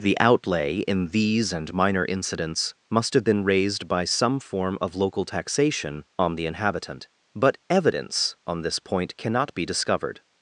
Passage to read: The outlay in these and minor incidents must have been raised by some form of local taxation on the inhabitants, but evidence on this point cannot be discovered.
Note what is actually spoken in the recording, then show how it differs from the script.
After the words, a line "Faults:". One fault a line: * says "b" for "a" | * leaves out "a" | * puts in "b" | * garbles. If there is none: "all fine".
The outlay in these and minor incidents must have been raised by some form of local taxation on the inhabitant, but evidence on this point cannot be discovered.
Faults:
* says "inhabitant" for "inhabitants"